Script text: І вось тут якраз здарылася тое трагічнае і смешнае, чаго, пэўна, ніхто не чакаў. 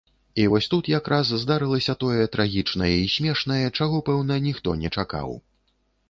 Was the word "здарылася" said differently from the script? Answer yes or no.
no